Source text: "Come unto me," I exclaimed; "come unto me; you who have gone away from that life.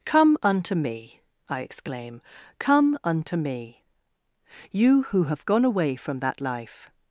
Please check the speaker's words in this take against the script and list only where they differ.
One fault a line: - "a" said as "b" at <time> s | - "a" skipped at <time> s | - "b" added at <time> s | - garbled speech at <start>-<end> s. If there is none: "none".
- "exclaimed" said as "exclaim" at 1.6 s